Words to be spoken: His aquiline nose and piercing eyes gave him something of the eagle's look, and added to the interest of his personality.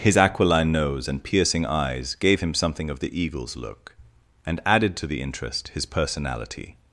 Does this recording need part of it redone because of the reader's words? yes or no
yes